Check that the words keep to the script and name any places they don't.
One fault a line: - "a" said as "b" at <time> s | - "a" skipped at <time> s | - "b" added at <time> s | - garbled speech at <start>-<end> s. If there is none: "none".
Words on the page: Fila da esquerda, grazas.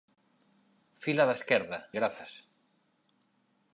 none